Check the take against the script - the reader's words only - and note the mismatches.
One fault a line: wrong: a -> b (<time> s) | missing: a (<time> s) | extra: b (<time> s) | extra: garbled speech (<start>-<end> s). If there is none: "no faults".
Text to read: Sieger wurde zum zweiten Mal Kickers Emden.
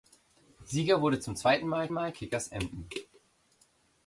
extra: Mal (1.9 s)